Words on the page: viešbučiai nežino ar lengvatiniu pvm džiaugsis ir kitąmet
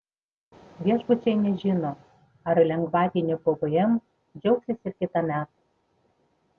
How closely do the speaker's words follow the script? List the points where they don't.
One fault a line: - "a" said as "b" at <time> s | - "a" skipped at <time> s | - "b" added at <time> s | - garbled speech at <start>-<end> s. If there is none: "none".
none